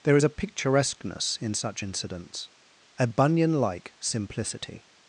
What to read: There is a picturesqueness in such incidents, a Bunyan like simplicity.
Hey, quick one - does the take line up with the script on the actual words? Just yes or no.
yes